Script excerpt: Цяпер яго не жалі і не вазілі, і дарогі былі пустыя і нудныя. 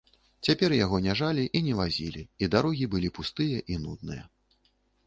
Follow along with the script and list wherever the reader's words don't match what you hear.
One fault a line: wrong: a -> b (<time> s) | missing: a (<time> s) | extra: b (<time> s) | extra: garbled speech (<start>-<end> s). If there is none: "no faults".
no faults